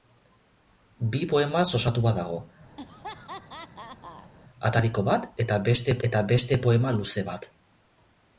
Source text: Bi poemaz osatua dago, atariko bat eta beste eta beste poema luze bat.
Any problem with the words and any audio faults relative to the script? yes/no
yes